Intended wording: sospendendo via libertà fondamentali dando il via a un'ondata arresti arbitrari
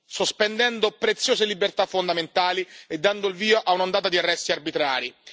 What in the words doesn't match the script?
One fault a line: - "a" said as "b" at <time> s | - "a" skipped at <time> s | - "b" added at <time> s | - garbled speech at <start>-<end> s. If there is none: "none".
- "via" said as "preziose" at 0.9 s
- "e" added at 2.9 s
- "di" added at 4.1 s